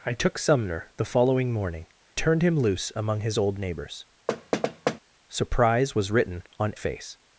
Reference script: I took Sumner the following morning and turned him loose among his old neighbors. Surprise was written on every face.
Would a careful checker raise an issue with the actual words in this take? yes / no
yes